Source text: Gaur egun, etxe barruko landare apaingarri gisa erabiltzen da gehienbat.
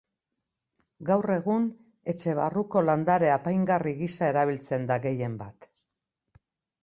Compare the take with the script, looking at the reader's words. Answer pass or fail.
pass